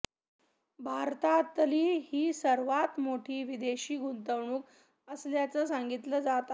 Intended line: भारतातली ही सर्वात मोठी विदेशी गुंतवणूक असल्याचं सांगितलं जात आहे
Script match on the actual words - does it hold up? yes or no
yes